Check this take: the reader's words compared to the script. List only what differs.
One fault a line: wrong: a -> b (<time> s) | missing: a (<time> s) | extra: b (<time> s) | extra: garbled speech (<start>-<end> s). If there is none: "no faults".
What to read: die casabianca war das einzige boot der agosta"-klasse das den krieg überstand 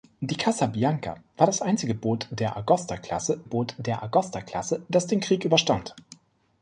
extra: boot der agosta"-klasse (3.4 s)